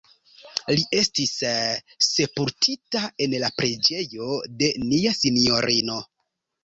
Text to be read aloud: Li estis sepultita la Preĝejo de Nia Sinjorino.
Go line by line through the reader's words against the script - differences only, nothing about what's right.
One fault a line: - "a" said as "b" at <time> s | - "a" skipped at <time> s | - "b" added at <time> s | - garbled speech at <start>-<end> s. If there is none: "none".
- "en" added at 3.3 s